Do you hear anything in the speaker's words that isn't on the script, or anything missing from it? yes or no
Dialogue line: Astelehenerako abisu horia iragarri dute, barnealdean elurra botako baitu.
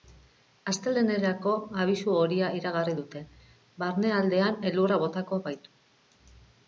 no